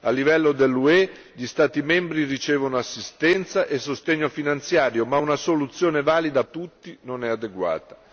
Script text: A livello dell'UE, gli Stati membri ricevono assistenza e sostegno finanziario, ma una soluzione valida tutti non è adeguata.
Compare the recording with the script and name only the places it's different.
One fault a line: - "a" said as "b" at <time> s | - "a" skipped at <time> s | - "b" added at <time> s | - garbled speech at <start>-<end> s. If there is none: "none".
none